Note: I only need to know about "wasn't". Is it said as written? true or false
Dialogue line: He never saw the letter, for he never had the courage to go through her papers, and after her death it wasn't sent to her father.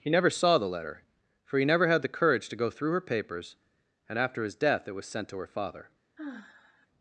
false